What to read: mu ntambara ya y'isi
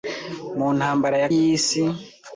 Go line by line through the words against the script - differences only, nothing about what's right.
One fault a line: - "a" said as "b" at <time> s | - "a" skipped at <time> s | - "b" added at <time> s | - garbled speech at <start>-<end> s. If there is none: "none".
none